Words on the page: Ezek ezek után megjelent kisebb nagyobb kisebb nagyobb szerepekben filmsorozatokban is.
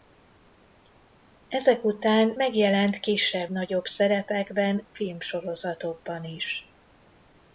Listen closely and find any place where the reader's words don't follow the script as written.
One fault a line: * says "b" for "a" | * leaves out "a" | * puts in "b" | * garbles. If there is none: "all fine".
* leaves out "ezek"
* leaves out "kisebb nagyobb"